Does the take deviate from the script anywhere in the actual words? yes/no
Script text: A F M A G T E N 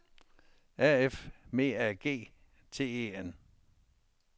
no